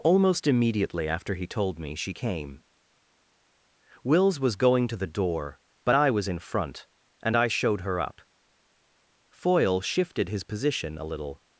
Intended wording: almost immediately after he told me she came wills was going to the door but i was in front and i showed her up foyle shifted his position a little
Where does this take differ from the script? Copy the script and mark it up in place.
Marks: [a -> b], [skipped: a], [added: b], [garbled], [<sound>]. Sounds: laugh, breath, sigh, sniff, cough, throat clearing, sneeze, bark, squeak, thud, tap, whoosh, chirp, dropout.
almost immediately after he told me she came wills was going to the door but i was in front and i showed her up foyle shifted his position a little